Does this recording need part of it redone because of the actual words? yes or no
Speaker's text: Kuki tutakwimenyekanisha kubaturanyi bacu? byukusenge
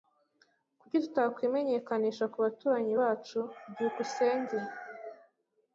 no